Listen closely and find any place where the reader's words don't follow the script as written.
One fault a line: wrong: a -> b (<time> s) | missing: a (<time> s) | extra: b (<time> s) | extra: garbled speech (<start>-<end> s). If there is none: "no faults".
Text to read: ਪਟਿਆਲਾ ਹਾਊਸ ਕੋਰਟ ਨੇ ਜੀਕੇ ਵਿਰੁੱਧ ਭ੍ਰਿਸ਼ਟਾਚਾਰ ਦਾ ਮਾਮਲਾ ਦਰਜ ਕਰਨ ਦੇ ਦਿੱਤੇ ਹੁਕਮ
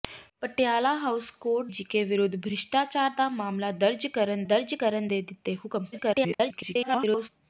missing: ਨੇ (1.7 s)
extra: ਦਰਜ ਕਰਨ (4.4 s)
extra: garbled speech (5.9-7.3 s)